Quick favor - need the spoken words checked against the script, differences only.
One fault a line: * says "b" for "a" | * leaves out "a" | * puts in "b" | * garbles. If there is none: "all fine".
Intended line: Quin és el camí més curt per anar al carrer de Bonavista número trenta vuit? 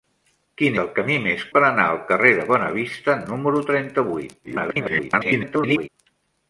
* leaves out "és"
* leaves out "curt"
* garbles